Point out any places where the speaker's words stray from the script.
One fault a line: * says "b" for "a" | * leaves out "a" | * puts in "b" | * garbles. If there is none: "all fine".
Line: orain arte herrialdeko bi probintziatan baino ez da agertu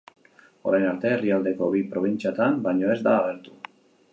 all fine